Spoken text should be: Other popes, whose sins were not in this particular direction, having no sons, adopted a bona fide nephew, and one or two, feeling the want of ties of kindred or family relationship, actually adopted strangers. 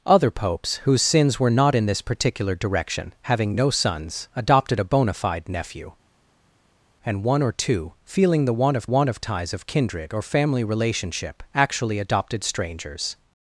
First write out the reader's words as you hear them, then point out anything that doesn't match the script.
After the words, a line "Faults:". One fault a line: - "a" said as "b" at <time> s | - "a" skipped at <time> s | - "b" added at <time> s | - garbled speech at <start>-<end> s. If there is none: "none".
Other popes, whose sins were not in this particular direction, having no sons, adopted a bona fide nephew, and one or two, feeling the want of want of ties of kindred or family relationship, actually adopted strangers.
Faults:
- "want of" added at 8.8 s